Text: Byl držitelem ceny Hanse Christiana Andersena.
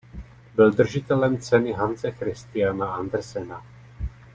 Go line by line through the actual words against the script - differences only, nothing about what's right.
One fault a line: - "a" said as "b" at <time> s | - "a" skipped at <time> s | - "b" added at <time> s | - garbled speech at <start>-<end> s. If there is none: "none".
none